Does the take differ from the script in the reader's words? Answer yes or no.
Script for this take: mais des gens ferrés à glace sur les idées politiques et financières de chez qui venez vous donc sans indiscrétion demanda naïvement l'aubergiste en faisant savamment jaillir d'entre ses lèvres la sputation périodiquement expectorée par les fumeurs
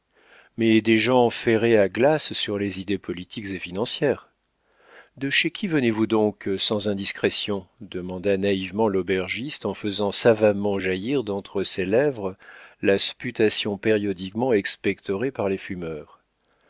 no